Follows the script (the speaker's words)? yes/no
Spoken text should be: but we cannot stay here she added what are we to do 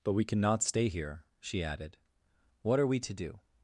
yes